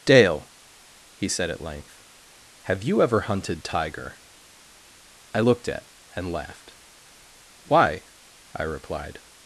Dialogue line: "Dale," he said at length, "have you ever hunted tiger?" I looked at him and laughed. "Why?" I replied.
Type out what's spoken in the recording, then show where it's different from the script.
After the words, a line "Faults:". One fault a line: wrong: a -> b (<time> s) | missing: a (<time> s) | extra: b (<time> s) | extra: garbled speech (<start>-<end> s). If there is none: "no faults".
"Dale," he said at length, "have you ever hunted tiger?" I looked at and laughed. "Why?" I replied.
Faults:
missing: him (5.9 s)